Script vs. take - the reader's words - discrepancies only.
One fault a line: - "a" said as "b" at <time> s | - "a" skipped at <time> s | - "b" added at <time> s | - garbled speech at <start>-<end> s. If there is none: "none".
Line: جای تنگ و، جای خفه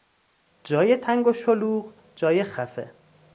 - "شلوغ" added at 1.3 s